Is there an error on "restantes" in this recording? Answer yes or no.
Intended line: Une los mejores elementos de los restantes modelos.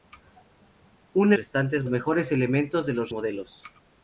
yes